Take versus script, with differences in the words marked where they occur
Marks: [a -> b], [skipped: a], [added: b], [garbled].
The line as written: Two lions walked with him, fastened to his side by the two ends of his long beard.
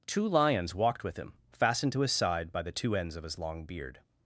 Two lions walked with him, fastened to his side by the two ends of his long beard.